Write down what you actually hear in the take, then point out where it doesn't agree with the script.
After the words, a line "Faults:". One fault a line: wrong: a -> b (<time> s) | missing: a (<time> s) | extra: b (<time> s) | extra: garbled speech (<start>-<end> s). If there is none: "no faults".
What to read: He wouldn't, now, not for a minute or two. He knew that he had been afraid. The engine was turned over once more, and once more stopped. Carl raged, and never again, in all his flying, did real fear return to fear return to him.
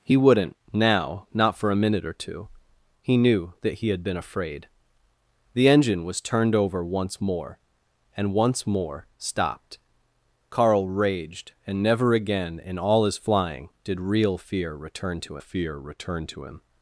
He wouldn't, now, not for a minute or two. He knew that he had been afraid. The engine was turned over once more, and once more stopped. Carl raged, and never again, in all his flying, did real fear return to fear return to him.
Faults:
no faults